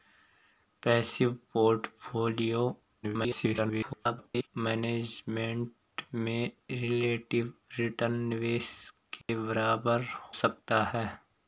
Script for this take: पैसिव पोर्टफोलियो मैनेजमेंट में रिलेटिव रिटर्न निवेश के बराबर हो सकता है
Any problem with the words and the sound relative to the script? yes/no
yes